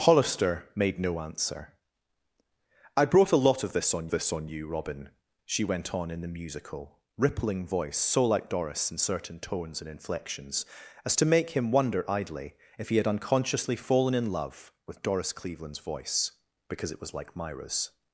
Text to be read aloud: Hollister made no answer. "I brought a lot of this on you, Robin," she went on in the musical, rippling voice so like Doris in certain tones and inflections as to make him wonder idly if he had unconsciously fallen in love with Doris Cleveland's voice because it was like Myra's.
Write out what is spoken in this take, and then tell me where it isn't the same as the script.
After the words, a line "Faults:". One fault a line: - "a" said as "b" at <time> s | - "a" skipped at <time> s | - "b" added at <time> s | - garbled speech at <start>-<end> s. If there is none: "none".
Hollister made no answer. "I brought a lot of this on this on you, Robin," she went on in the musical, rippling voice so like Doris in certain tones and inflections as to make him wonder idly if he had unconsciously fallen in love with Doris Cleveland's voice because it was like Myra's.
Faults:
- "this on" added at 4.1 s